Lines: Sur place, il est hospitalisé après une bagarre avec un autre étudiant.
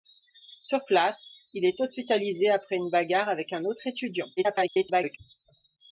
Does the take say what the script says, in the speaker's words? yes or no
no